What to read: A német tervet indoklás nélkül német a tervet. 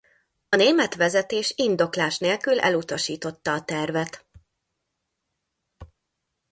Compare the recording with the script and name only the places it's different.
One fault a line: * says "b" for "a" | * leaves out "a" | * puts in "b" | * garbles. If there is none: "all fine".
* says "vezetés" for "tervet"
* says "elutasította" for "német"